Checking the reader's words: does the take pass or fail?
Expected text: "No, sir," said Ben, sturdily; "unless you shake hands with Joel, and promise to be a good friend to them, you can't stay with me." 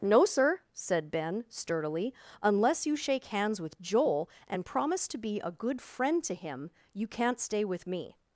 fail